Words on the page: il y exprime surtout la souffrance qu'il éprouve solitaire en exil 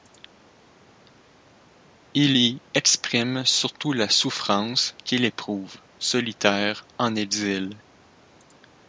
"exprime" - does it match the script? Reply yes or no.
yes